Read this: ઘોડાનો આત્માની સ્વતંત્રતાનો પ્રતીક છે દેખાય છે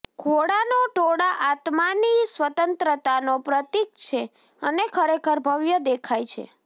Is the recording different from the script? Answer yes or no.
yes